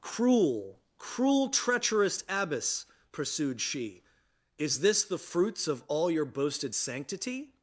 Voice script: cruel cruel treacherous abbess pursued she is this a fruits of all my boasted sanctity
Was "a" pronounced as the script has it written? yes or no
no